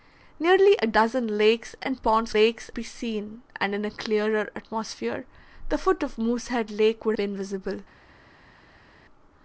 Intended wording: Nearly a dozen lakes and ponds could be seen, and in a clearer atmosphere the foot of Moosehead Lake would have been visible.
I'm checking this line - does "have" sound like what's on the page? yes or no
no